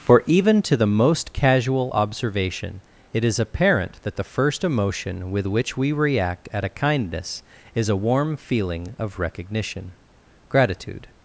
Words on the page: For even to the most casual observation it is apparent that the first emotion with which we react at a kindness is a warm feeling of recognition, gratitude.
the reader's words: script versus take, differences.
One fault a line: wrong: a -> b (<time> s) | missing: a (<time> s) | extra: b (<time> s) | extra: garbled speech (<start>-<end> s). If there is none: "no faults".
no faults